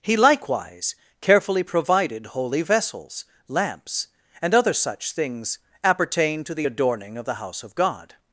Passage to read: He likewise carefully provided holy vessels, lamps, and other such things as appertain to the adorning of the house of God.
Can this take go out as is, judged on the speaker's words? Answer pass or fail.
fail